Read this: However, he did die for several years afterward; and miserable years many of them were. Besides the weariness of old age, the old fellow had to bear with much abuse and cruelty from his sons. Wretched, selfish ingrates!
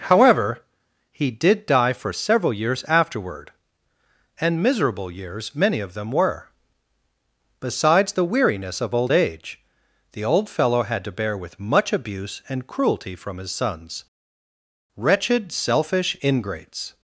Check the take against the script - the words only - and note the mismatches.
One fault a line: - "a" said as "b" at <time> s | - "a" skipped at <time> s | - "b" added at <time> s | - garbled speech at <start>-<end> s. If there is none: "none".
none